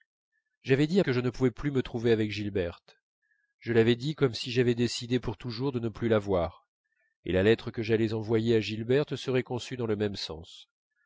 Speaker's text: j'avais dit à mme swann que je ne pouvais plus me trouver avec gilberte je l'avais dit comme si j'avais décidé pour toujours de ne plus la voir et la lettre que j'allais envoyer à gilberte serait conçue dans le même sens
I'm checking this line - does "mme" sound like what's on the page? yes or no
no